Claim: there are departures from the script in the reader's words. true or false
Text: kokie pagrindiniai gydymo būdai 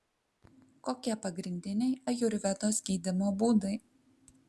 true